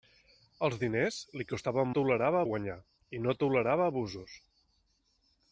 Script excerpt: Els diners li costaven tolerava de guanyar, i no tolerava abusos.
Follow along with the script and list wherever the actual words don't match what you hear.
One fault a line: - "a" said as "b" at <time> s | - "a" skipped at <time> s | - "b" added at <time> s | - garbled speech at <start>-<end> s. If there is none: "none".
none